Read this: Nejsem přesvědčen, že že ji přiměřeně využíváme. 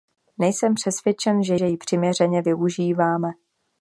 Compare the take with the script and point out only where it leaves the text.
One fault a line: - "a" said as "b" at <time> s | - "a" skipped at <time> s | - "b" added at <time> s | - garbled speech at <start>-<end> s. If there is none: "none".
none